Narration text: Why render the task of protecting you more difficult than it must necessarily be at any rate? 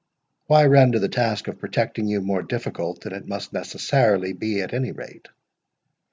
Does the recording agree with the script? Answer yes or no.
yes